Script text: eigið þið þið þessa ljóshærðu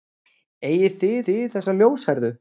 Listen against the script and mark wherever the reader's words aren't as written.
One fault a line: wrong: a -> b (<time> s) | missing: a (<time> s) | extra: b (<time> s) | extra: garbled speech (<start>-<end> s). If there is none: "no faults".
no faults